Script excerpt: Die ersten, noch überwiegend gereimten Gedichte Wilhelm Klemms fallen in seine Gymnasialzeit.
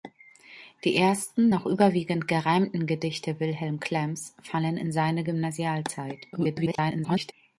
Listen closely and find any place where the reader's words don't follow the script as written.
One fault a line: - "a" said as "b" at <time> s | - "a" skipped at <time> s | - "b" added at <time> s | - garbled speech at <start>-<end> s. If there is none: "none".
- garbled speech at 6.3-7.3 s